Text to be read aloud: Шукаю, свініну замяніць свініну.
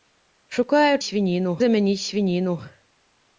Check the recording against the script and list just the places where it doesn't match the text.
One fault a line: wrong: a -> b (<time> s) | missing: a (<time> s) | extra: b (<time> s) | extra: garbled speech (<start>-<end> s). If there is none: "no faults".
no faults